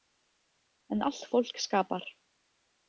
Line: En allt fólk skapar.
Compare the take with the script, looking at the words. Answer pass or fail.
pass